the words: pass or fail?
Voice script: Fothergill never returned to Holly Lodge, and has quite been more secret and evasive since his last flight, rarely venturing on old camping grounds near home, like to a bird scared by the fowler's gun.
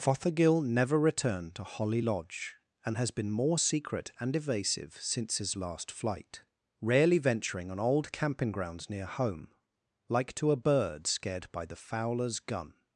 fail